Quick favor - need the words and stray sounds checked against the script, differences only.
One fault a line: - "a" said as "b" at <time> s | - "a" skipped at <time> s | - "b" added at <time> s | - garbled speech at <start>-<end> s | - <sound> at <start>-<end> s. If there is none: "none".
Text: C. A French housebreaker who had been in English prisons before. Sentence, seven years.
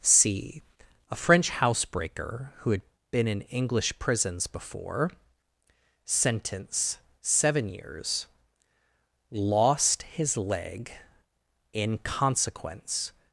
- "Lost his leg in consequence" added at 9.3 s